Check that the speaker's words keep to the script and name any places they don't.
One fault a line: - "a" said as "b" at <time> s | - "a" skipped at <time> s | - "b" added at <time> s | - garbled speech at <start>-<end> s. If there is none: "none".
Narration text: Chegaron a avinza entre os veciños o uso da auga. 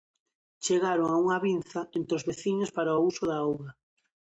- "unha" added at 1.2 s
- "para" added at 2.7 s